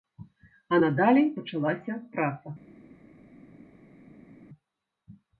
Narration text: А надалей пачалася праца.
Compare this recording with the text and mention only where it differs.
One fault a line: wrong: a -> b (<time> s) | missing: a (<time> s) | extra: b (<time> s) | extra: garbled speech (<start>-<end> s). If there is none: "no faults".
no faults